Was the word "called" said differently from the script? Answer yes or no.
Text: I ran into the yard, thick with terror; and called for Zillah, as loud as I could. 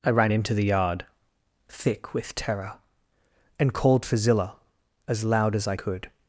no